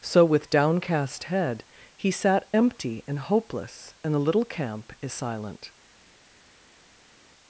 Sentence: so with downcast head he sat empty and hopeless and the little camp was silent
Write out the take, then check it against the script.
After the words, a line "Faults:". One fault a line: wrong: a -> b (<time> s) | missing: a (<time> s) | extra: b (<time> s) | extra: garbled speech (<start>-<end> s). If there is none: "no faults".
so with downcast head he sat empty and hopeless and the little camp is silent
Faults:
wrong: was -> is (5.0 s)